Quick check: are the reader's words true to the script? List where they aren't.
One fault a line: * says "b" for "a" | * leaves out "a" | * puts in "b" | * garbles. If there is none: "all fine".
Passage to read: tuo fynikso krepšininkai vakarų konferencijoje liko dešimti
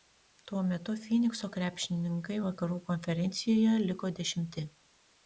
* puts in "metu"